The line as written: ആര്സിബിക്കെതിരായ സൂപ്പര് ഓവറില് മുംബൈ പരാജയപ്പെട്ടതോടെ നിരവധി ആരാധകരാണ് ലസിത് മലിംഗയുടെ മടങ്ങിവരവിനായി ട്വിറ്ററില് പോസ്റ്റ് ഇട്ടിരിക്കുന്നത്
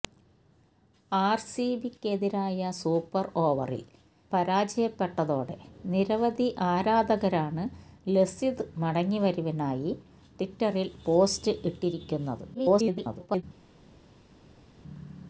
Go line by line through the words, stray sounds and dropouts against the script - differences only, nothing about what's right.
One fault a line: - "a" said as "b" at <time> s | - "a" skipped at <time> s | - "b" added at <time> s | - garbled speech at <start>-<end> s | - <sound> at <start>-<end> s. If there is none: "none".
- "മുംബൈ" skipped at 3.9 s
- "മലിംഗയുടെ" skipped at 8.6 s
- garbled speech at 12.5-13.4 s